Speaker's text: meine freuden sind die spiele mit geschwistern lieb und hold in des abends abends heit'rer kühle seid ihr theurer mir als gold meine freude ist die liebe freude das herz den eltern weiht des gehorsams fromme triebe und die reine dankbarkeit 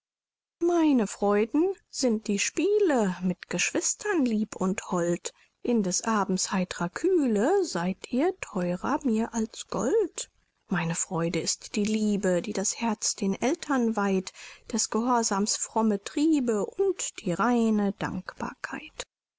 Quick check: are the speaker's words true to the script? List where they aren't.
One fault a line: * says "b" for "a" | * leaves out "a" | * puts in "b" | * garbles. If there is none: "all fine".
* leaves out "abends"
* says "die" for "freude"